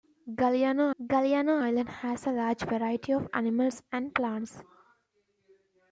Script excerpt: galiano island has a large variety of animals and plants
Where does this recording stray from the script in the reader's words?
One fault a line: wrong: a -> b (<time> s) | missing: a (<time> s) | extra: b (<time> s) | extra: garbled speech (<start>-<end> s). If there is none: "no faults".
extra: galiano (1.0 s)